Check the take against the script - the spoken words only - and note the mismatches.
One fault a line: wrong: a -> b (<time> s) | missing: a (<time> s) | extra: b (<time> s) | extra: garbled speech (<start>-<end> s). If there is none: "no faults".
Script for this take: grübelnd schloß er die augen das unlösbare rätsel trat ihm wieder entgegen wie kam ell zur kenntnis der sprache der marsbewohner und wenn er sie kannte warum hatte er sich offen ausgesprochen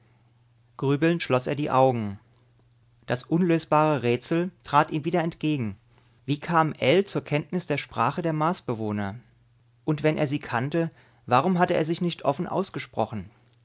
extra: nicht (12.0 s)